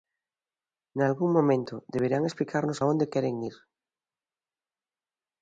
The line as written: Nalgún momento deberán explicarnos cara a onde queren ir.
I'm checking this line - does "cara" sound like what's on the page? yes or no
no